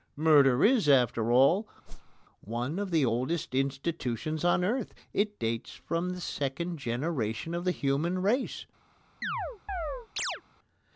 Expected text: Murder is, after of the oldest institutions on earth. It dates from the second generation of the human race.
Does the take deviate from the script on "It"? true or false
false